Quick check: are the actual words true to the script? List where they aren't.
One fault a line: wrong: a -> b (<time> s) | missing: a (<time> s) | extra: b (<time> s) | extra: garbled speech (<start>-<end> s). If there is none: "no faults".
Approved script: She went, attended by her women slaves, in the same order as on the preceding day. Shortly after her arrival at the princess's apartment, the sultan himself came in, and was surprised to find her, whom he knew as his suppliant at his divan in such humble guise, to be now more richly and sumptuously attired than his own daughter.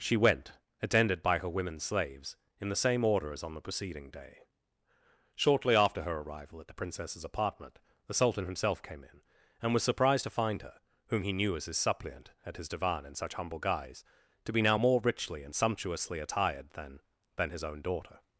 extra: than (17.4 s)